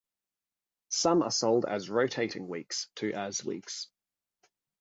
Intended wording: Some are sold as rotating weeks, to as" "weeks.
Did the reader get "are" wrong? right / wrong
right